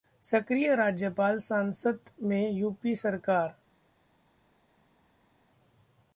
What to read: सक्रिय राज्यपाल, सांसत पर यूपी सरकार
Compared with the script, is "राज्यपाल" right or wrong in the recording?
right